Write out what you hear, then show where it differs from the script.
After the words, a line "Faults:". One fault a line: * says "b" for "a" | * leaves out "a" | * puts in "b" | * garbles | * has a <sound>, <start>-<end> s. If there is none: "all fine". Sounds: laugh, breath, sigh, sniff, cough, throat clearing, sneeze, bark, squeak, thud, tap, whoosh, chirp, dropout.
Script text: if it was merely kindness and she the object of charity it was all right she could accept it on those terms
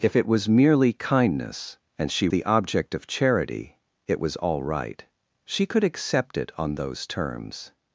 if it was merely kindness and she the object of charity it was all right she could accept it on those terms
Faults:
all fine